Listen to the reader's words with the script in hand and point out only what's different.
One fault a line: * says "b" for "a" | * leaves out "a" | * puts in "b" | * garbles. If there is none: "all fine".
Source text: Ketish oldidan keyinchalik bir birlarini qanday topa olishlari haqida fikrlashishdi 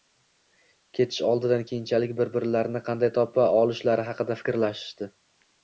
all fine